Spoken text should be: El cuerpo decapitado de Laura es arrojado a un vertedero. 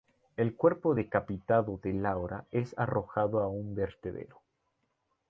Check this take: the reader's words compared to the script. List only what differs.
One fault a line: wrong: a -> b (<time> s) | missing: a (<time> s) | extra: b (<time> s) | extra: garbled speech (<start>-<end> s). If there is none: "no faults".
no faults